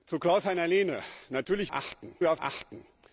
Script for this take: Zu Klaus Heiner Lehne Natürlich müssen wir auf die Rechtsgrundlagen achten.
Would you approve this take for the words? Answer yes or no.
no